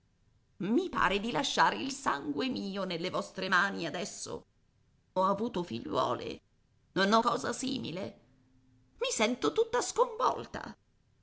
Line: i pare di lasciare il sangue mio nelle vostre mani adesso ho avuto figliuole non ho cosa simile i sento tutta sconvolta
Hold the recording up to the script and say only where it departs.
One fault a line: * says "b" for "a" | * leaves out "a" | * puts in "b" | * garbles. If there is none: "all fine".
all fine